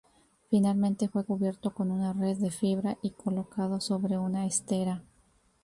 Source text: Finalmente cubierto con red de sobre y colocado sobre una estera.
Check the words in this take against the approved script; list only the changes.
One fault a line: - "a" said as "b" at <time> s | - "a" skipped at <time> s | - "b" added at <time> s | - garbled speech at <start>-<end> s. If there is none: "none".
- "fue" added at 1.1 s
- "una" added at 1.9 s
- "sobre" said as "fibra" at 2.5 s